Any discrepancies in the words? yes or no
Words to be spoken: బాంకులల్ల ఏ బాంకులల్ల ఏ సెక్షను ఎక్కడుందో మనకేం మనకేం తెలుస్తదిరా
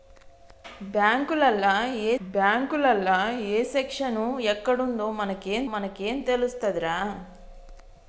no